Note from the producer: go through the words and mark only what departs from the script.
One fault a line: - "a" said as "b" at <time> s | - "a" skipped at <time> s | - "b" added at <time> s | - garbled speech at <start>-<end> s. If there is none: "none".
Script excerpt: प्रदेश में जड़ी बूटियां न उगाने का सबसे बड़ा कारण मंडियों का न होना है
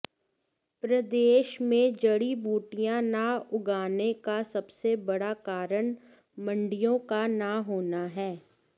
none